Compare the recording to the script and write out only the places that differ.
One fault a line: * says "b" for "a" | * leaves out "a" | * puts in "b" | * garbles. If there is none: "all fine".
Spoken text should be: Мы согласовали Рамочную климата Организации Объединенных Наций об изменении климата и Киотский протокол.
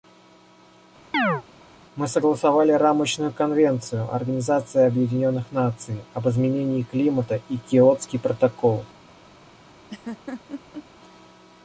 * says "конвенцию" for "климата"